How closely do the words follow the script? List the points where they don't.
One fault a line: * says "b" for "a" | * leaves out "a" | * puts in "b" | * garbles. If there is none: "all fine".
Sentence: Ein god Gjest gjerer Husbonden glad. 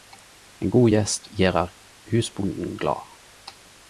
all fine